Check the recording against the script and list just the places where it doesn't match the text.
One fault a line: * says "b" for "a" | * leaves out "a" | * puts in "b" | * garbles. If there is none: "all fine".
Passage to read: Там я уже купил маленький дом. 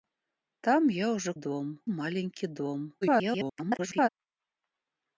* says "дом" for "купил"
* garbles